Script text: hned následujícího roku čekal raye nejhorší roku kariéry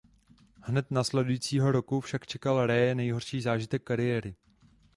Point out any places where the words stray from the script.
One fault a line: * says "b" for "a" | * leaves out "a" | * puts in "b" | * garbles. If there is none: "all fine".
* puts in "však"
* says "zážitek" for "roku"